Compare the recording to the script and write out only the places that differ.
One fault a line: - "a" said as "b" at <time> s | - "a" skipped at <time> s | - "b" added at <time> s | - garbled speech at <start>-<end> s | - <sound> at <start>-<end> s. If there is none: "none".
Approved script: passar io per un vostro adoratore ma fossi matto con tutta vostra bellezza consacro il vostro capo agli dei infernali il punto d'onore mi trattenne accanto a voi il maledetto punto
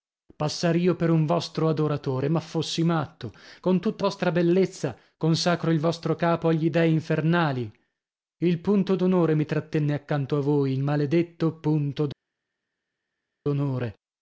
none